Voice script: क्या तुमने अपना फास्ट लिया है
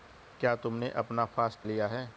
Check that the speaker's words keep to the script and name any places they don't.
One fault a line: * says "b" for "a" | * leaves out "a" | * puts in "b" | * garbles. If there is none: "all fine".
all fine